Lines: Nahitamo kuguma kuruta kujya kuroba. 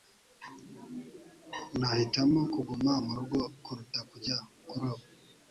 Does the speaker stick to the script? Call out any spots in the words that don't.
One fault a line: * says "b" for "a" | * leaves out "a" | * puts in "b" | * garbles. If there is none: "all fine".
* puts in "murugo"